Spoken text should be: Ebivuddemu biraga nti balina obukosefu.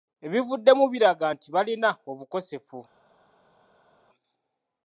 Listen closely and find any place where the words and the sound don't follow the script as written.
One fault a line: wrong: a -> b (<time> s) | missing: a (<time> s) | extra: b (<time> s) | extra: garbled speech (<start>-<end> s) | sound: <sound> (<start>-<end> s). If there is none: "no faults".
no faults